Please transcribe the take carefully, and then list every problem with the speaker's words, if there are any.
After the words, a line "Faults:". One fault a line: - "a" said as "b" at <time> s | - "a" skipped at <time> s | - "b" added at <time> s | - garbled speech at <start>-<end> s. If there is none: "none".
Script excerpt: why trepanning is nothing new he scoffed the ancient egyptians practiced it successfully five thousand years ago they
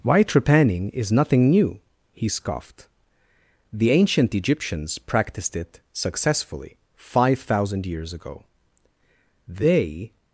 why trepanning is nothing new he scoffed the ancient egyptians practiced it successfully five thousand years ago they
Faults:
none